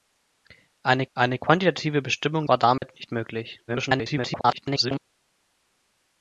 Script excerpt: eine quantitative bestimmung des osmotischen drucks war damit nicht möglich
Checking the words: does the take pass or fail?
fail